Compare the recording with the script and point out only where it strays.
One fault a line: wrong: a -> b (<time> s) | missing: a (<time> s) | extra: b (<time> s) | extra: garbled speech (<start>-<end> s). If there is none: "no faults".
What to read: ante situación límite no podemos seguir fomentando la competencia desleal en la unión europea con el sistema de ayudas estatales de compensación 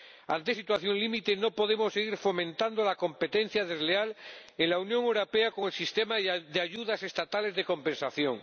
no faults